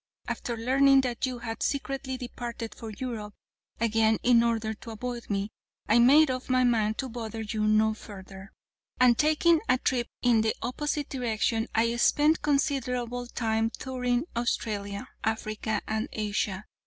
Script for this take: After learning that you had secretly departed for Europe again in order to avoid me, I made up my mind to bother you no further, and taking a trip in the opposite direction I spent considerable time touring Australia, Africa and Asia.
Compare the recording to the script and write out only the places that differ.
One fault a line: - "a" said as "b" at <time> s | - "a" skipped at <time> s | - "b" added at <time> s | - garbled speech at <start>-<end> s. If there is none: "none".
none